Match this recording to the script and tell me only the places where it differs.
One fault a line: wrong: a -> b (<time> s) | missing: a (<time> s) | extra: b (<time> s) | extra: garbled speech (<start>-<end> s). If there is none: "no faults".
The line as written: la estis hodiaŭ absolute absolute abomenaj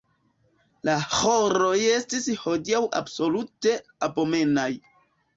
extra: ĥoroj (1.2 s)
missing: absolute (3.8 s)